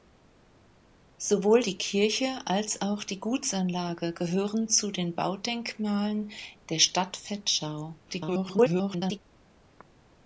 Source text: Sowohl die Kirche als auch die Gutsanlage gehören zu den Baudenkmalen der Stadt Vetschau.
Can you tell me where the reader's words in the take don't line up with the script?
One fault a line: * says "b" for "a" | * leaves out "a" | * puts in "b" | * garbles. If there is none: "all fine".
* garbles